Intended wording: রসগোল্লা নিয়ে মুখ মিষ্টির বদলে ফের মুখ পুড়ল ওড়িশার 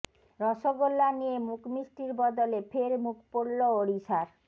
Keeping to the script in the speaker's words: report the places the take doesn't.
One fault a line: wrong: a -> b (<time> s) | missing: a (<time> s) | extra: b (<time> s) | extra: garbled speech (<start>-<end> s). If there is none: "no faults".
no faults